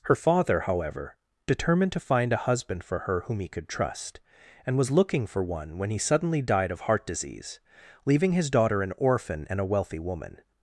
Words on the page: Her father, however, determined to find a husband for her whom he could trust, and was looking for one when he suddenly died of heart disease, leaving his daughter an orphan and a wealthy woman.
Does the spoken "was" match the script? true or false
true